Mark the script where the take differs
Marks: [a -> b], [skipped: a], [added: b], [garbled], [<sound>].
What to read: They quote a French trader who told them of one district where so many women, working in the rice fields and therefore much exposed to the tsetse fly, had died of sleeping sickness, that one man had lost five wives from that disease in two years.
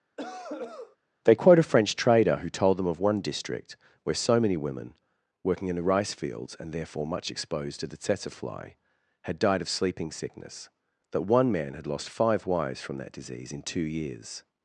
[cough] They quote a French trader who told them of one district where so many women, working in the rice fields and therefore much exposed to the tsetse fly, had died of sleeping sickness, that one man had lost five wives from that disease in two years.